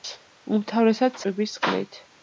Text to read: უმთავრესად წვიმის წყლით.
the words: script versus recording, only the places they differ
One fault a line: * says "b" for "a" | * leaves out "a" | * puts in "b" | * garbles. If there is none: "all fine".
all fine